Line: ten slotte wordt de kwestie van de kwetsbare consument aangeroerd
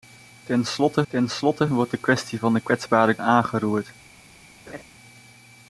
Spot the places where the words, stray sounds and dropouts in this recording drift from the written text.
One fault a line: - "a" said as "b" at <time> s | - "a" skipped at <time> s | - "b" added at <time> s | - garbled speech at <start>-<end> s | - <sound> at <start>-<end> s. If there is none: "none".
- "ten slotte" added at 1.1 s
- "consument" skipped at 3.2 s
- laugh at 4.7-4.8 s